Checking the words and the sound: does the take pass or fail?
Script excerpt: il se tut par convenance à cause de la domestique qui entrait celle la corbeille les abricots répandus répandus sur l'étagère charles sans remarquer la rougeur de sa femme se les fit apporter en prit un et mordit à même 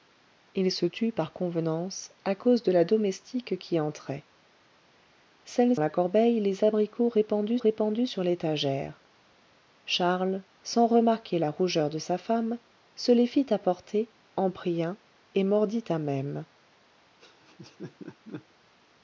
fail